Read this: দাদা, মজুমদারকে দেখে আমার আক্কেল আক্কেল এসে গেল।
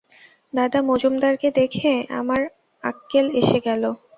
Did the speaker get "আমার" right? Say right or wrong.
right